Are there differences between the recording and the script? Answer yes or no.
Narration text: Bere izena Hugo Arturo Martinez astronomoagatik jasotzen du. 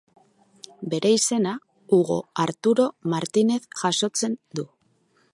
yes